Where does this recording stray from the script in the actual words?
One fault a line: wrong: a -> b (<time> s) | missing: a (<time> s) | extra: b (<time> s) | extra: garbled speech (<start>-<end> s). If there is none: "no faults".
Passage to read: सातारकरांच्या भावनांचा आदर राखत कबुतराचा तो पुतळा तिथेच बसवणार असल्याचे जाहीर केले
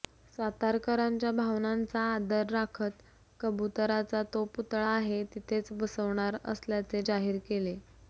extra: आहे (4.9 s)